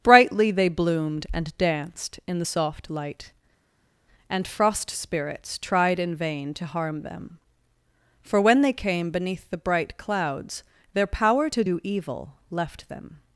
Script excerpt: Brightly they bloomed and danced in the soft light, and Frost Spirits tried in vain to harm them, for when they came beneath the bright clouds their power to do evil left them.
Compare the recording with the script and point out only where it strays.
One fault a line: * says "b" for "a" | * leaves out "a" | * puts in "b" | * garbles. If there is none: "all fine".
all fine